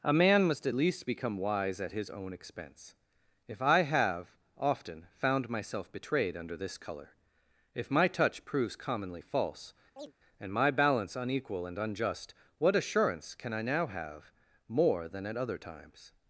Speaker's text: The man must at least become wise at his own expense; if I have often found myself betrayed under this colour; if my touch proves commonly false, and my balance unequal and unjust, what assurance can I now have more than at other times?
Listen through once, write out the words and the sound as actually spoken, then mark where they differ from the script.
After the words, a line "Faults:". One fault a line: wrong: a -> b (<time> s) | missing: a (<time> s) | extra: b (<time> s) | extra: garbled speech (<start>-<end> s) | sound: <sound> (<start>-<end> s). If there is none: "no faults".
A man must at least become wise at his own expense; if I have often found myself betrayed under this colour; if my touch proves commonly false, and my balance unequal and unjust, what assurance can I now have more than at other times?
Faults:
wrong: The -> A (0.0 s)
sound: chirp (10.0-10.1 s)